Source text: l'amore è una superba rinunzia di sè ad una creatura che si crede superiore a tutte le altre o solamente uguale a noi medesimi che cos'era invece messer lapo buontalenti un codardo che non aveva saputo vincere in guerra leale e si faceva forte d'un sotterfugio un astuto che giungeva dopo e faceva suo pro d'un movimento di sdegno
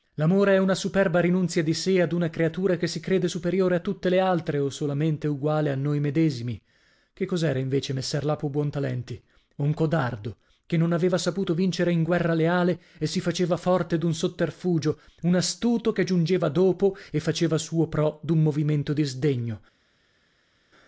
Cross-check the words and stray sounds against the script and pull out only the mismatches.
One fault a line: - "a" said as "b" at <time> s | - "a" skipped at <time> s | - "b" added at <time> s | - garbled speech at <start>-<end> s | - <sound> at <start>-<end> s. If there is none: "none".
none